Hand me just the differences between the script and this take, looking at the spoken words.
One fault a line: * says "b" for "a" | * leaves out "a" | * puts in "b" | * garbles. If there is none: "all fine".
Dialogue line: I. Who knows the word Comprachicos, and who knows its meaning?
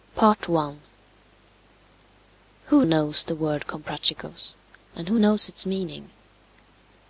all fine